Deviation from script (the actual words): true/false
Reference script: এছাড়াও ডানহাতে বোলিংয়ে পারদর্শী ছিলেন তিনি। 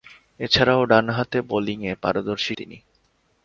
true